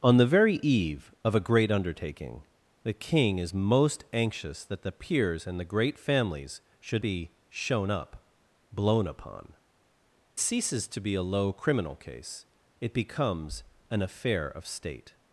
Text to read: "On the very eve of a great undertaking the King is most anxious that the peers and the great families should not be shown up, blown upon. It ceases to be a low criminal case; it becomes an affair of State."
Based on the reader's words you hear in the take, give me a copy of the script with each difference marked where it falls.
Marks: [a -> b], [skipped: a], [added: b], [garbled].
"On the very eve of a great undertaking the King is most anxious that the peers and the great families should [skipped: not] be shown up, blown upon. [skipped: It] ceases to be a low criminal case; it becomes an affair of State."